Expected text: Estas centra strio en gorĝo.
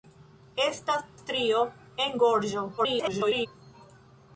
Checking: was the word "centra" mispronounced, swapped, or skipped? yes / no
yes